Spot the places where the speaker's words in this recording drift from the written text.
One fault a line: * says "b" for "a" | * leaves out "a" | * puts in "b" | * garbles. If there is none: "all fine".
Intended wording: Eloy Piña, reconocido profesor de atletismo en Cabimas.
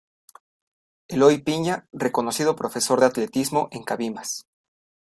all fine